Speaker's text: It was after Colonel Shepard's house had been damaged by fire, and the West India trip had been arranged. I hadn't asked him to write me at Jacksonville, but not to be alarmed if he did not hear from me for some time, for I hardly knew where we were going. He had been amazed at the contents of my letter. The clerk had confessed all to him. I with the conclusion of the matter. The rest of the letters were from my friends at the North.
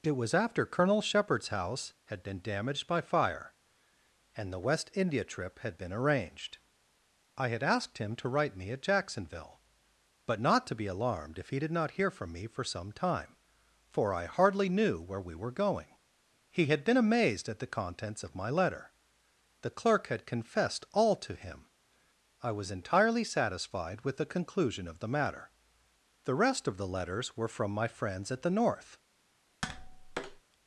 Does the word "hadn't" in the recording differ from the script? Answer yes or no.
yes